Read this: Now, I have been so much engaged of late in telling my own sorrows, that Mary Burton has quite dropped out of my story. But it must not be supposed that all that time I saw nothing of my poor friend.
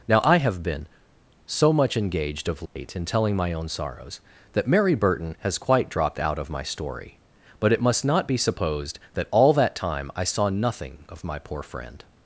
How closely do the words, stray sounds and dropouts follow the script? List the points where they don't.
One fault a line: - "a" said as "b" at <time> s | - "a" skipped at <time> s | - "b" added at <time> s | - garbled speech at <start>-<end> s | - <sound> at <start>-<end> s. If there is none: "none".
- dropout at 2.7-2.8 s